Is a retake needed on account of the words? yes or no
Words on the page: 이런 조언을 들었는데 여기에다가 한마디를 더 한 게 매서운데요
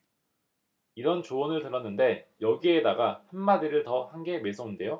no